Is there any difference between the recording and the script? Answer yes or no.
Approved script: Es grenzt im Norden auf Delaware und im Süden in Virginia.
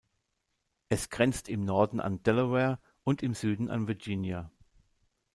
yes